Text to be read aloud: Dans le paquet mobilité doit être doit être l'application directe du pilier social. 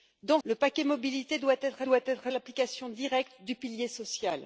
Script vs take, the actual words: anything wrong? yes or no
no